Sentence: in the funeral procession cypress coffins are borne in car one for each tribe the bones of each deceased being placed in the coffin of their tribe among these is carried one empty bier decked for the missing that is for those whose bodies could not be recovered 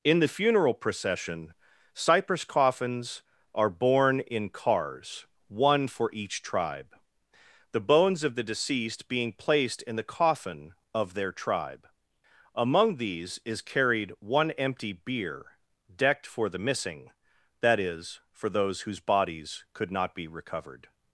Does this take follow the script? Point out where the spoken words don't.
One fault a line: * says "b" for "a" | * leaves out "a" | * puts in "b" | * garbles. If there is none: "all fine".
* says "cars" for "car"
* says "the" for "each"